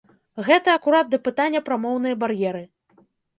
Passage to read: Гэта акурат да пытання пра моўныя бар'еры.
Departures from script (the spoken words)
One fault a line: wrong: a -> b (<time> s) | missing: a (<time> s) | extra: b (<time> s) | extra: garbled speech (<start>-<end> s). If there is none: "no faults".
no faults